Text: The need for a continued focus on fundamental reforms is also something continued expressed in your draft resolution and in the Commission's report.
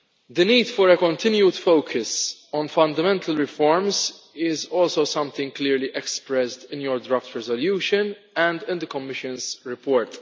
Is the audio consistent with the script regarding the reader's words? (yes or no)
no